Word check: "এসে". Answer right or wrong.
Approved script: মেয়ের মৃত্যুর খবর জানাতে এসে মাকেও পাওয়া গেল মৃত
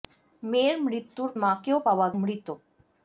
wrong